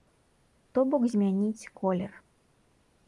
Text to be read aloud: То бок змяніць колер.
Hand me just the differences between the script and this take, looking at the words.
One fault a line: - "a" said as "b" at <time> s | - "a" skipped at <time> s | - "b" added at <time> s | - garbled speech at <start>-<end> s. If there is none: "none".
none